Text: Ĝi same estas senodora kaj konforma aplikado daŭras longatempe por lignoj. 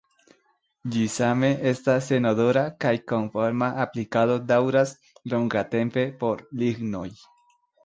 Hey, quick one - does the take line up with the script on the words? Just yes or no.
yes